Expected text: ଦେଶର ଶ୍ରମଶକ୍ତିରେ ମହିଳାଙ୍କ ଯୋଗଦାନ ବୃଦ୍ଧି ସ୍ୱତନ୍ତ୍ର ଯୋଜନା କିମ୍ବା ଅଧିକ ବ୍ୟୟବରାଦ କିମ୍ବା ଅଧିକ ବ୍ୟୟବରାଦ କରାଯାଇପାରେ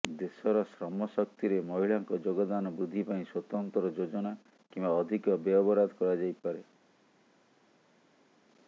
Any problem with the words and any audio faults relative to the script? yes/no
yes